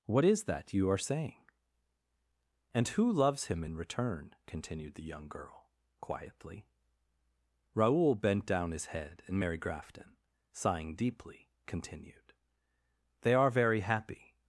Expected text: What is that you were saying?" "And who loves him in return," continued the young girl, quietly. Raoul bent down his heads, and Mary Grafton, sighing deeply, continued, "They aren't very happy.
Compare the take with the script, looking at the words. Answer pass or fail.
fail